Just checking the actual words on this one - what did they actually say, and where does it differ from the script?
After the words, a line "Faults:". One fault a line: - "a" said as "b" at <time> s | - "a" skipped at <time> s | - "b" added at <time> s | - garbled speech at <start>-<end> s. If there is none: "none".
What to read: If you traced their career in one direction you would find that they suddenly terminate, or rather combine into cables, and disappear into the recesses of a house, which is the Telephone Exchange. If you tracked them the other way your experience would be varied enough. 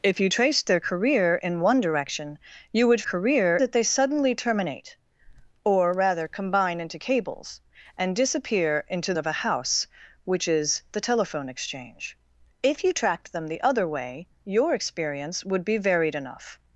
If you traced their career in one direction you would career that they suddenly terminate, or rather combine into cables, and disappear into of a house, which is the Telephone Exchange. If you tracked them the other way your experience would be varied enough.
Faults:
- "find" said as "career" at 3.0 s
- "the recesses" skipped at 9.2 s